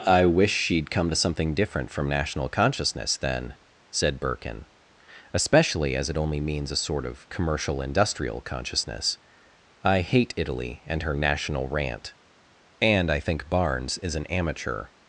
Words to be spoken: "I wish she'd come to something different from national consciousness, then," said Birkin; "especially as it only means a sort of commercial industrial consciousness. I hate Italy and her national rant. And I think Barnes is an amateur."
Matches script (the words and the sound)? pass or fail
pass